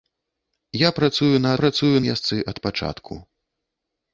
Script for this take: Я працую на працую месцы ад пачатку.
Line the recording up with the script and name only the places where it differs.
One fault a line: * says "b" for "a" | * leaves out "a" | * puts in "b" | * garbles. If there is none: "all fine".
all fine